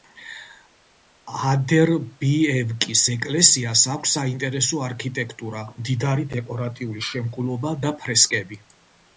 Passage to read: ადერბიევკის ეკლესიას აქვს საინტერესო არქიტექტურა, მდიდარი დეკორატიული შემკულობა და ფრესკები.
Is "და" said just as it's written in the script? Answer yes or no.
yes